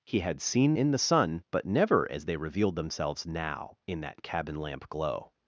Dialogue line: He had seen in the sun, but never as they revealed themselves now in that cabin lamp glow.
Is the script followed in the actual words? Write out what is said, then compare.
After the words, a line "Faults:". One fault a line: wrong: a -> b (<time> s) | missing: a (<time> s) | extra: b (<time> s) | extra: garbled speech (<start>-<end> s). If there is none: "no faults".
He had seen in the sun, but never as they revealed themselves now in that cabin lamp glow.
Faults:
no faults